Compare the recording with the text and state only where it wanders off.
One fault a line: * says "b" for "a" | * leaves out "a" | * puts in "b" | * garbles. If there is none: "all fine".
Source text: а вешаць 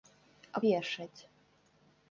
all fine